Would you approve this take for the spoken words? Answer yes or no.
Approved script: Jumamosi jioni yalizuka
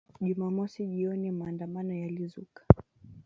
no